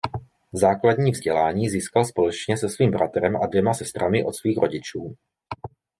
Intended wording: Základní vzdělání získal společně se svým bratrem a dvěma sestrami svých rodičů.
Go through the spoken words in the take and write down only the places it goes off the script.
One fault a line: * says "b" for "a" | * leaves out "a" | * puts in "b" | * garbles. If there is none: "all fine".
* puts in "od"